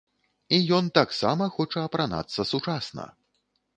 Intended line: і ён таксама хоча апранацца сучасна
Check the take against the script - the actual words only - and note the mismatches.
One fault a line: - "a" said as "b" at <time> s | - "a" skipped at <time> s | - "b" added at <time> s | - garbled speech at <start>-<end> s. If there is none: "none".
none